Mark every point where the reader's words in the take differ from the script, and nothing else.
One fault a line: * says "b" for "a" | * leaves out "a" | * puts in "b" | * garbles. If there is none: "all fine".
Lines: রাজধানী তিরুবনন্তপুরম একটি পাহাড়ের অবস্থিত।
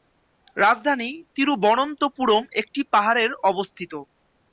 all fine